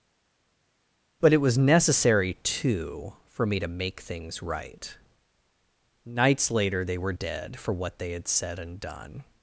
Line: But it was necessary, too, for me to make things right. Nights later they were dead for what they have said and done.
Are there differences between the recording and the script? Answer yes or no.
yes